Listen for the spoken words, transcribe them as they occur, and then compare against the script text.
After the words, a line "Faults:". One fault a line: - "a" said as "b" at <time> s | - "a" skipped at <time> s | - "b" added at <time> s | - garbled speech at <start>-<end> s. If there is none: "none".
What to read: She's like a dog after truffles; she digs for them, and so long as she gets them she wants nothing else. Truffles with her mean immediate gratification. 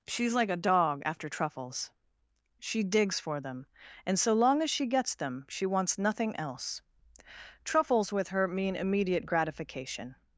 She's like a dog after truffles; she digs for them, and so long as she gets them she wants nothing else. Truffles with her mean immediate gratification.
Faults:
none